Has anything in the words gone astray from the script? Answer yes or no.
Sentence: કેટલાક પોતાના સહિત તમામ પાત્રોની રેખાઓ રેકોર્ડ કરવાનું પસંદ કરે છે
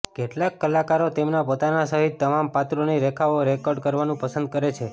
yes